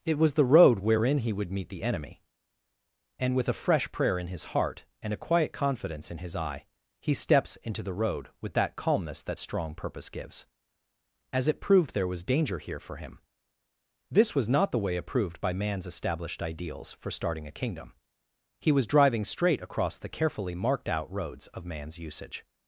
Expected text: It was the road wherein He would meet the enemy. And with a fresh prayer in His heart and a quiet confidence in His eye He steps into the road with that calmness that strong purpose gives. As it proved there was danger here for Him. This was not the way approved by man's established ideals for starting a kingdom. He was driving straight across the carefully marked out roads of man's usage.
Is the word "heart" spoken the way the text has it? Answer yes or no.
yes